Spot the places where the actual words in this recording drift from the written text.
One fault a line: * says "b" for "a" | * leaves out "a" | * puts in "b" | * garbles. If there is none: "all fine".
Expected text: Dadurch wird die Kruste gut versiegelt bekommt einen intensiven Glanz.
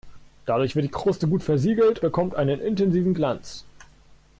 all fine